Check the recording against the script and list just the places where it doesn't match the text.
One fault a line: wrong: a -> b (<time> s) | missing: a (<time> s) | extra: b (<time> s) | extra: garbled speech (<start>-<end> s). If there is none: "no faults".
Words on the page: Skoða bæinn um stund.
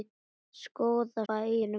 no faults